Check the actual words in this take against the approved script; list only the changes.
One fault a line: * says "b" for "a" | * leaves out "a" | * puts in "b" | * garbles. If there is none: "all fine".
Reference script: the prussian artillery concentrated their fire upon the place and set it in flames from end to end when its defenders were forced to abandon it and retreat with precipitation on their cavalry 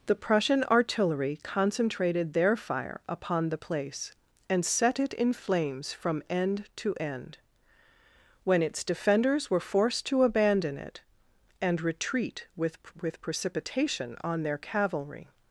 * puts in "with"